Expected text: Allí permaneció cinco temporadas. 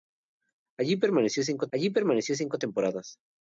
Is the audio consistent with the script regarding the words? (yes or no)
no